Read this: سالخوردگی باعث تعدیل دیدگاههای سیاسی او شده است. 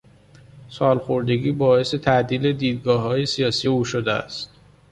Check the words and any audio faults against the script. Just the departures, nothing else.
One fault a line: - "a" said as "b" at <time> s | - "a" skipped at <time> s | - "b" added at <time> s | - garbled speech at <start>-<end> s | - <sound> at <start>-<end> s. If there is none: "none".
none